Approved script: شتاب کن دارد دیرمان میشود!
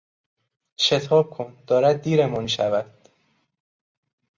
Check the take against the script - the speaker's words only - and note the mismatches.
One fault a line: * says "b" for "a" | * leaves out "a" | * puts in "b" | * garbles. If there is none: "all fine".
all fine